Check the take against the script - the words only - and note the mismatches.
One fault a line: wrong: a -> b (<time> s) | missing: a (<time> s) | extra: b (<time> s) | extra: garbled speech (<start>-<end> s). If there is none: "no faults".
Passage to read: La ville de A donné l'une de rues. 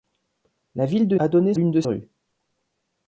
no faults